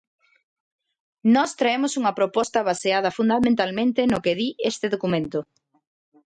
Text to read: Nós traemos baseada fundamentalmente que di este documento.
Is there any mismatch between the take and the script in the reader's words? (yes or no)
yes